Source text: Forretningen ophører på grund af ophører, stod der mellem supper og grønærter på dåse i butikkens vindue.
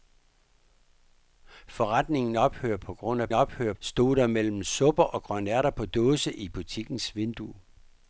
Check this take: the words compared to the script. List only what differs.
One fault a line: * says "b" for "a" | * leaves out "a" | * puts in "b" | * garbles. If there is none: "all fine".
all fine